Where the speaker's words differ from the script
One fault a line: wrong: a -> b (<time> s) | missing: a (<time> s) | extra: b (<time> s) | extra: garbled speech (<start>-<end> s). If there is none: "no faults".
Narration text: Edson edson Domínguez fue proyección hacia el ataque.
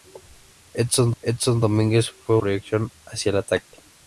no faults